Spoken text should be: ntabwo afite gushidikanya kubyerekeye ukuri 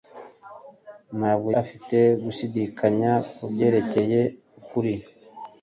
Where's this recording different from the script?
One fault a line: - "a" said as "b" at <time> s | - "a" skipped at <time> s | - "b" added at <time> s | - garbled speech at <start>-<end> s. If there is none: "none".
none